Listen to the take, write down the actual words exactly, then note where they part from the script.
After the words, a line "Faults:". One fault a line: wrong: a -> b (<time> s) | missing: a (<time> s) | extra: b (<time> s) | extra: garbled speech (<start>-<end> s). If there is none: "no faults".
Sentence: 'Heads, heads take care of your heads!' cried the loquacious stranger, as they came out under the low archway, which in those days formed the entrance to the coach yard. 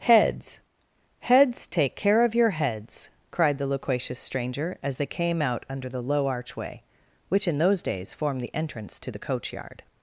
'Heads, heads take care of your heads!' cried the loquacious stranger, as they came out under the low archway, which in those days formed the entrance to the coach yard.
Faults:
no faults